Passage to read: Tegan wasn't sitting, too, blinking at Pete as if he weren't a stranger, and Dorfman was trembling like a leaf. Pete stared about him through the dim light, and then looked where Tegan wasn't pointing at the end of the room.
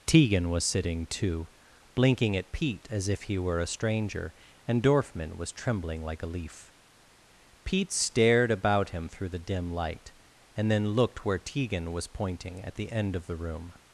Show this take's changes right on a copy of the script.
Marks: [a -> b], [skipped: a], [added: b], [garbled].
Tegan [wasn't -> was] sitting, too, blinking at Pete as if he [weren't -> were] a stranger, and Dorfman was trembling like a leaf. Pete stared about him through the dim light, and then looked where Tegan [wasn't -> was] pointing at the end of the room.